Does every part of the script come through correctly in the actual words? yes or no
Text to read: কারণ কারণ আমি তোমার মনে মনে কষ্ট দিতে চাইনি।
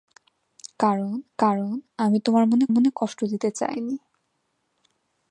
yes